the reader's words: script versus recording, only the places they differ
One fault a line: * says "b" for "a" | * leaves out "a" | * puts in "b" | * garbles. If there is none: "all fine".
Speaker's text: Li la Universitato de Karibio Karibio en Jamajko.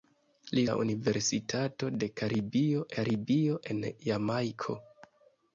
all fine